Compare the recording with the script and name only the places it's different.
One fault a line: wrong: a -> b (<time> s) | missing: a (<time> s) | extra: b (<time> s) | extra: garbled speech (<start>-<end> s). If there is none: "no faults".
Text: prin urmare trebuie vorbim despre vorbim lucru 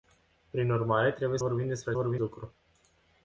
no faults